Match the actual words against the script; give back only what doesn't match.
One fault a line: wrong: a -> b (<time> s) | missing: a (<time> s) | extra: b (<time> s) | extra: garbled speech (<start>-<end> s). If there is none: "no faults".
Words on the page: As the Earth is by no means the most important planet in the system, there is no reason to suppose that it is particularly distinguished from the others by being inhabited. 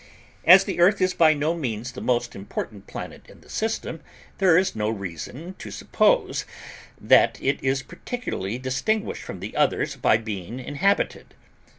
no faults